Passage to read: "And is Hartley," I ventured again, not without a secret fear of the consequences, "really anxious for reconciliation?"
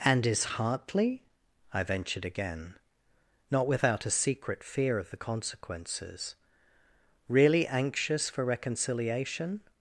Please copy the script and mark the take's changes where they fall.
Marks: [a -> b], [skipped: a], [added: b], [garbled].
"And is Hartley," I ventured again, not without a secret fear of the consequences, "really anxious for reconciliation?"